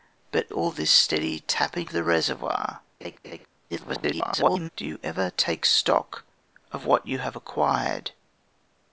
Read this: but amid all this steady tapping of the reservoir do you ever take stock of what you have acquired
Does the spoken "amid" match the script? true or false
false